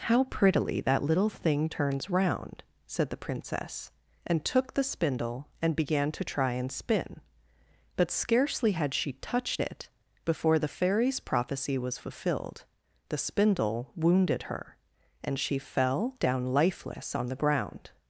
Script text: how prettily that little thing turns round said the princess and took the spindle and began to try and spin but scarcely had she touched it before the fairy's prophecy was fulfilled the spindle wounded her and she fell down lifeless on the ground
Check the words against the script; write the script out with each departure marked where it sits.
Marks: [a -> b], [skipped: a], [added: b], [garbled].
how prettily that little thing turns round said the princess and took the spindle and began to try and spin but scarcely had she touched it before the fairy's prophecy was fulfilled the spindle wounded her and she fell down lifeless on the ground